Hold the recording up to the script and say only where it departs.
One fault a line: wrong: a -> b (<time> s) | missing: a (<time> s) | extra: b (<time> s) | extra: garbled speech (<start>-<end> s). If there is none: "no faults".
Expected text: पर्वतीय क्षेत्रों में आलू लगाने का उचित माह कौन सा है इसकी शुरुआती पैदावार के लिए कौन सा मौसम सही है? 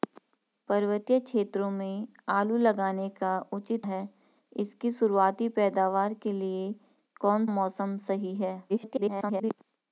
missing: माह कौन सा (3.9 s)
missing: सा (7.5 s)
extra: garbled speech (8.7-9.5 s)